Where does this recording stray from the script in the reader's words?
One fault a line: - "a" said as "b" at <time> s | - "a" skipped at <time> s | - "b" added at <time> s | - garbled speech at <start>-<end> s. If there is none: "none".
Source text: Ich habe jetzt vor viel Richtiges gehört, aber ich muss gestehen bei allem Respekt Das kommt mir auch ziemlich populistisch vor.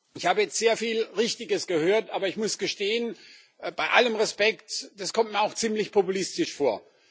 - "vor" said as "sehr" at 0.6 s